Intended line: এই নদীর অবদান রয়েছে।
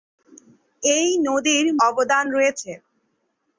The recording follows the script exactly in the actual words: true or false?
true